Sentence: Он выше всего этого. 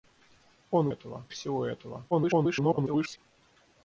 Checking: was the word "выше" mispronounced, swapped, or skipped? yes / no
yes